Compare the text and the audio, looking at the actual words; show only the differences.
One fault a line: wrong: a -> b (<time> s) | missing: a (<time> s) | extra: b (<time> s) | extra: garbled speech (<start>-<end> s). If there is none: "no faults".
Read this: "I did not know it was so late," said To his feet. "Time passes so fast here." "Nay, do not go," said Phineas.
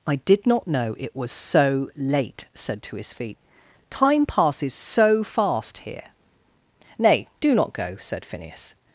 no faults